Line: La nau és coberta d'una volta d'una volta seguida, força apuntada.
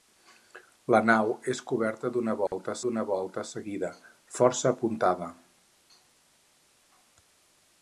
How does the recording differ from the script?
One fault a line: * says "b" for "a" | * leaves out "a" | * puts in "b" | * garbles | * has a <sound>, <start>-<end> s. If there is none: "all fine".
* has a dropout, 2.5-2.5 s